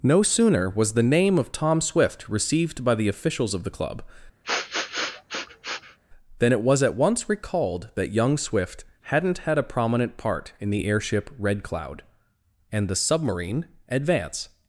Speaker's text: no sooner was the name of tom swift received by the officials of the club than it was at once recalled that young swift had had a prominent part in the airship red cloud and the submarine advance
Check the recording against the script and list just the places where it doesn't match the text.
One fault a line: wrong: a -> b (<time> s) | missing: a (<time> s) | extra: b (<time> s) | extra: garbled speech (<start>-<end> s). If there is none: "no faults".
wrong: had -> hadn't (9.0 s)